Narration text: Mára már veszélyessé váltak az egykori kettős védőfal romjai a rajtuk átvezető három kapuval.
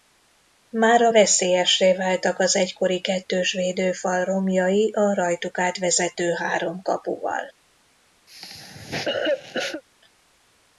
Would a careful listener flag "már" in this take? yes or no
yes